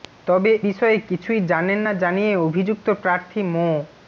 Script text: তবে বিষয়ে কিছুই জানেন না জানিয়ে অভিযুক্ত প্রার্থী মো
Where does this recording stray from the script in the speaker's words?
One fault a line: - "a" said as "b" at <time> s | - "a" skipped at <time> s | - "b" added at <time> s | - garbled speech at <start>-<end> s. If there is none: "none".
none